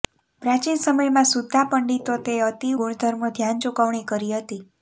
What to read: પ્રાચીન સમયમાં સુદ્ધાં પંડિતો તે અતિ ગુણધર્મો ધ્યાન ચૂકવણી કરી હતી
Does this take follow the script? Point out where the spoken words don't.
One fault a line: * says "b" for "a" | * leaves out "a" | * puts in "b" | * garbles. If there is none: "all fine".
all fine